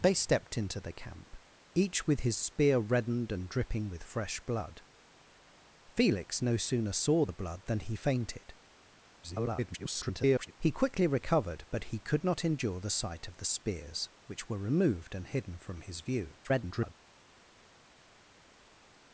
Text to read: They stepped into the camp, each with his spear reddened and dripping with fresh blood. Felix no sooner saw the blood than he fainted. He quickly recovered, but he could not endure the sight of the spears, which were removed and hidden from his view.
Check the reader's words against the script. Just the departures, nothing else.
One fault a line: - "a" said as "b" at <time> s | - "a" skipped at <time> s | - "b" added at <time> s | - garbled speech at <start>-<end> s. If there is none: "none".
- garbled speech at 9.2-10.5 s
- garbled speech at 16.4-16.9 s